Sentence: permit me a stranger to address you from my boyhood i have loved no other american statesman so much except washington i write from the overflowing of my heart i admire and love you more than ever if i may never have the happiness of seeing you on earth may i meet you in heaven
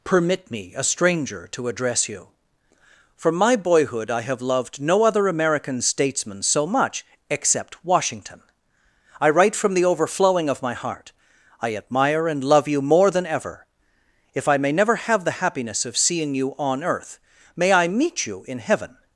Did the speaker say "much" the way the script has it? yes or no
yes